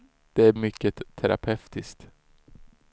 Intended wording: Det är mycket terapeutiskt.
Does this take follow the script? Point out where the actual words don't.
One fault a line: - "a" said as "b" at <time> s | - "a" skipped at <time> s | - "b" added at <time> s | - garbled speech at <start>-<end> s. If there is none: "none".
none